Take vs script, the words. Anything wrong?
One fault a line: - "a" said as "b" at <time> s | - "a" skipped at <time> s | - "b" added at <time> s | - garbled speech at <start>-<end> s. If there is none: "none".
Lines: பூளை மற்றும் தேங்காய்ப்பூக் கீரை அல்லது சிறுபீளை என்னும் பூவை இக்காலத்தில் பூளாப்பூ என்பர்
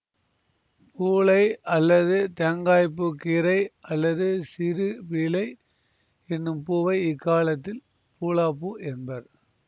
- "மற்றும்" said as "அல்லது" at 1.7 s